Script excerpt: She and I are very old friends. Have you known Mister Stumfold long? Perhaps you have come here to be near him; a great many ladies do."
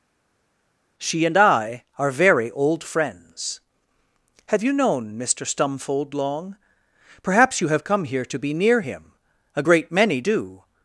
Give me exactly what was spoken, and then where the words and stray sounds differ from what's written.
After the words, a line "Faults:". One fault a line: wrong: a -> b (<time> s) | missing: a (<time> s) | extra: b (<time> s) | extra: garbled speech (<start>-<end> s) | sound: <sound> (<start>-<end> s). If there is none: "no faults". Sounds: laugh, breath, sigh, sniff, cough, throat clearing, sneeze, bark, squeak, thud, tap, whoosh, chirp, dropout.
She and I are very old friends. Have you known Mister Stumfold long? Perhaps you have come here to be near him; a great many do."
Faults:
missing: ladies (10.2 s)